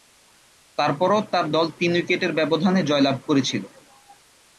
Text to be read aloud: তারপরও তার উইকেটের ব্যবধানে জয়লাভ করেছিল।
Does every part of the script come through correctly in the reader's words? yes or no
no